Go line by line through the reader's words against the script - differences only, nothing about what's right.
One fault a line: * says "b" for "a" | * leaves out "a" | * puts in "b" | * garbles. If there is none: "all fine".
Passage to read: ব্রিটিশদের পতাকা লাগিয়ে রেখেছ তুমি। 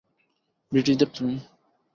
* leaves out "পতাকা লাগিয়ে রেখেছ"